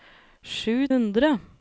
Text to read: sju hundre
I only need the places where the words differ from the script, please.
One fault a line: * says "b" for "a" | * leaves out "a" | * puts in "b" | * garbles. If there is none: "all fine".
all fine